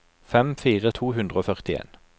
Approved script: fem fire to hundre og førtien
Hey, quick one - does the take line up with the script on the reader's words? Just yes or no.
yes